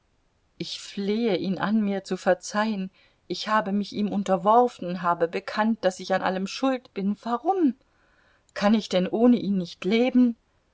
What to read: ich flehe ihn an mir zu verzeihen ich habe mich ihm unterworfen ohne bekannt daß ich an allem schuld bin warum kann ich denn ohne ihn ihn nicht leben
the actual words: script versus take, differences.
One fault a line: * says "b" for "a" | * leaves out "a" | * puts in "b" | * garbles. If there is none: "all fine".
* says "habe" for "ohne"
* leaves out "ihn"